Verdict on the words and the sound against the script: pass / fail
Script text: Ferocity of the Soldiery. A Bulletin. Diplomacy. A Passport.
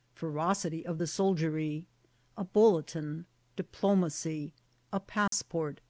fail